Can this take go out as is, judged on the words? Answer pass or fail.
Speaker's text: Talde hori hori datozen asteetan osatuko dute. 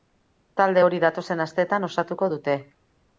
fail